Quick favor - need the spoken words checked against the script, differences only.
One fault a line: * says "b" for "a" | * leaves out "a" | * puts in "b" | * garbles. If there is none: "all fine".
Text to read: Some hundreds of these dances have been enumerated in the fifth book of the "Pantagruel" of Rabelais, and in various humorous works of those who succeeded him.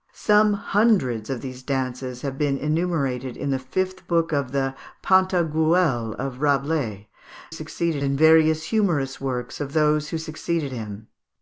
* says "succeeded" for "and"